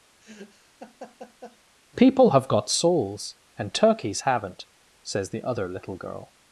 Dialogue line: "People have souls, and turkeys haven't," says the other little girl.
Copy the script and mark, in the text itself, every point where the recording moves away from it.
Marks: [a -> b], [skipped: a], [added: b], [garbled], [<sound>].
[laugh] "People have [added: got] souls, and turkeys haven't," says the other little girl.